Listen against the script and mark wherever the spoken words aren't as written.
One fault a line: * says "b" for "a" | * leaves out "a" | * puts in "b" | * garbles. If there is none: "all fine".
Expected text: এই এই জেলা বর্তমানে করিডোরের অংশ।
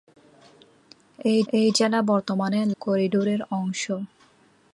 all fine